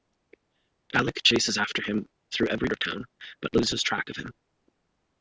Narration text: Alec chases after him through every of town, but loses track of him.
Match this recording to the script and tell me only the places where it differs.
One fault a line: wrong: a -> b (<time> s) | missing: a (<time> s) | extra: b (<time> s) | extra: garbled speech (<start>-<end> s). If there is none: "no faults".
no faults